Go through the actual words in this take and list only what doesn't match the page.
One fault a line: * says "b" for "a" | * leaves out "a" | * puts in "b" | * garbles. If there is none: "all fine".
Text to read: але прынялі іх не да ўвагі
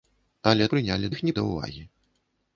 all fine